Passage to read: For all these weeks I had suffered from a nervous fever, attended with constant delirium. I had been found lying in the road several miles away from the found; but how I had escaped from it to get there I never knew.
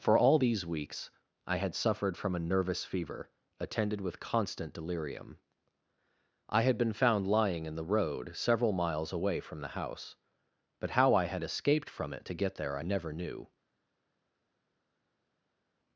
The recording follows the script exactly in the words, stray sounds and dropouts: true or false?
false